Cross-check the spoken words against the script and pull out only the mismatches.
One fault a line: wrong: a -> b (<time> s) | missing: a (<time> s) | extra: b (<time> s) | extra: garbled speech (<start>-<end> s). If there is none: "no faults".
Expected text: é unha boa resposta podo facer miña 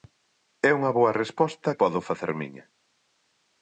no faults